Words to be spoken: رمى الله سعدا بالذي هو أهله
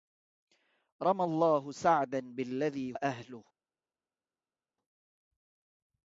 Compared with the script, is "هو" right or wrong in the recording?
wrong